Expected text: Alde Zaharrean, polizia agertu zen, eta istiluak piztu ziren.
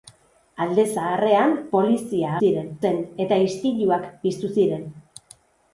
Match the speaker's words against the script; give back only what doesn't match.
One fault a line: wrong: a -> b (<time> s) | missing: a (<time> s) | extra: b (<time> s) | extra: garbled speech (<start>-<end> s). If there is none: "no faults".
wrong: agertu -> ziren (2.4 s)